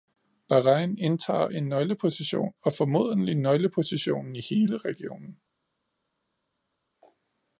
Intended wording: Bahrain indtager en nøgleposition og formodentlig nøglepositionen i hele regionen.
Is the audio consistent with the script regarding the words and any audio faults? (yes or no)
yes